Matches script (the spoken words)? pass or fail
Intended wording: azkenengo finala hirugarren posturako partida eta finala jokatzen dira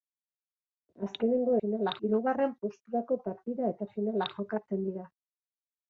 pass